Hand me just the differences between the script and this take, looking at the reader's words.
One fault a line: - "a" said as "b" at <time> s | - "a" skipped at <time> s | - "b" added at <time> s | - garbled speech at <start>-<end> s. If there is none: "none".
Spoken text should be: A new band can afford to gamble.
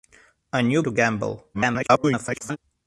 - "band can afford" skipped at 0.8 s
- garbled speech at 1.5-2.6 s